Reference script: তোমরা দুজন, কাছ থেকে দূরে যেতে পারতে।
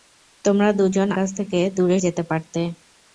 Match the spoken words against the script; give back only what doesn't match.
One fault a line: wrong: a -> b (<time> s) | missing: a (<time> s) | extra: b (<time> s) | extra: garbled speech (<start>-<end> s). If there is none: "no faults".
no faults